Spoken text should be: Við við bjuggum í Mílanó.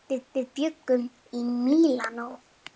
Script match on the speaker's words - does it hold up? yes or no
yes